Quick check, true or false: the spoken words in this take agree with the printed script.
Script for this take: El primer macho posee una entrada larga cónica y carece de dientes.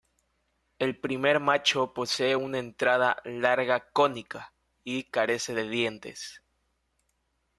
true